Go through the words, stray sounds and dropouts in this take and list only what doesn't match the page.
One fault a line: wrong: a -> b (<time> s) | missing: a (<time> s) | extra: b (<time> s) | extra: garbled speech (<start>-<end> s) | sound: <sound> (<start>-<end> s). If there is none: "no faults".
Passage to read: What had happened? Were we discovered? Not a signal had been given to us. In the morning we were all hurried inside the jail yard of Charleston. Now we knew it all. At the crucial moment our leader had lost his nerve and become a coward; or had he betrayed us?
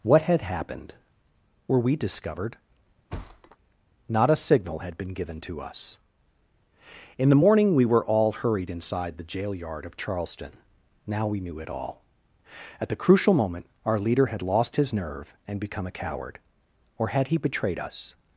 sound: thud (3.1-3.6 s)